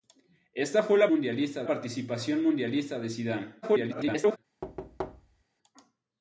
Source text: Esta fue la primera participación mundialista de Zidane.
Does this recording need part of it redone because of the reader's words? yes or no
yes